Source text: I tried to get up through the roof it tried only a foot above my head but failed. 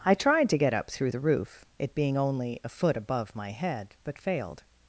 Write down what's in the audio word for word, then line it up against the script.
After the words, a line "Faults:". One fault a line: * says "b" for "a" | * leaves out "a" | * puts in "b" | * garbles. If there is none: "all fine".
I tried to get up through the roof it being only a foot above my head but failed.
Faults:
* says "being" for "tried"